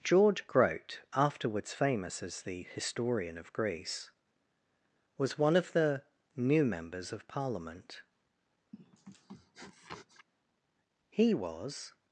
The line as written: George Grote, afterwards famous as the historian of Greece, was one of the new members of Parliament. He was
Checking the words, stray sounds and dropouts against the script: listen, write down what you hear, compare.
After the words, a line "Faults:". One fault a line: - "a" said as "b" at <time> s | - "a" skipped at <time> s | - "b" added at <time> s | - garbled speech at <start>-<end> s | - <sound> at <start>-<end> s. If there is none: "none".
George Grote, afterwards famous as the historian of Greece, was one of the new members of Parliament. He was
Faults:
- sniff at 8.7-10.3 s